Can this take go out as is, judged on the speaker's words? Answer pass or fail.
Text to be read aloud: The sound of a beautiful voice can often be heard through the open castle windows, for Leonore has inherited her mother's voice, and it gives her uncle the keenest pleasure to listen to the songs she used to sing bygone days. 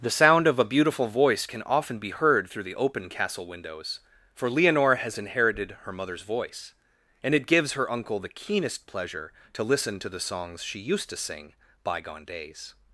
pass